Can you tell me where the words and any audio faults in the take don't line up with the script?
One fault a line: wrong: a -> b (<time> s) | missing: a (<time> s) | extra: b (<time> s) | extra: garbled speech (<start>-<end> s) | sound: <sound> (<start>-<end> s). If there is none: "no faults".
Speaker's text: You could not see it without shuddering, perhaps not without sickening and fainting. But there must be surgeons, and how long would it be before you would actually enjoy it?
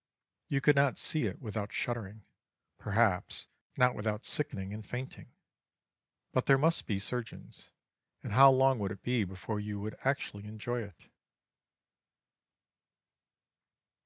no faults